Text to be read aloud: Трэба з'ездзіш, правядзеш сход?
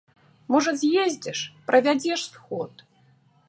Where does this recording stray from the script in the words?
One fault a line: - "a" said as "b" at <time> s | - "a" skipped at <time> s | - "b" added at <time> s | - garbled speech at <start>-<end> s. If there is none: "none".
- "Трэба" said as "Можа" at 0.5 s